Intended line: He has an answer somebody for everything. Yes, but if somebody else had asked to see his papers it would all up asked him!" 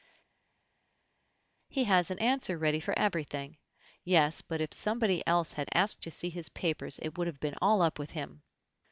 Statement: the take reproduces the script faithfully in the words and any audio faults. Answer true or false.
false